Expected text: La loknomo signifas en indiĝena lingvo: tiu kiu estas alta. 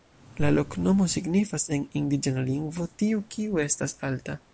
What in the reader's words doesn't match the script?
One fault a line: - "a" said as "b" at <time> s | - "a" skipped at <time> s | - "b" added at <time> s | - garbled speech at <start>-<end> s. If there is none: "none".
none